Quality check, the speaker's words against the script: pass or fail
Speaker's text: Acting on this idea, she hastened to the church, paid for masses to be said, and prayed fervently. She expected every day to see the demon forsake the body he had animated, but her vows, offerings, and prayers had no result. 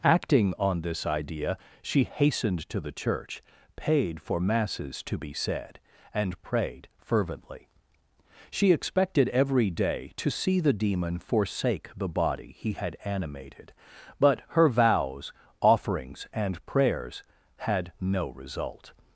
pass